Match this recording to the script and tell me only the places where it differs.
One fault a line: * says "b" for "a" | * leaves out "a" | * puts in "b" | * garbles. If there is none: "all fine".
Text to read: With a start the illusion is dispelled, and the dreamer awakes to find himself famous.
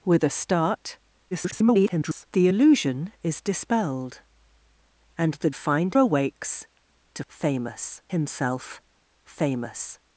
* garbles
* says "find" for "dreamer"
* says "famous" for "find"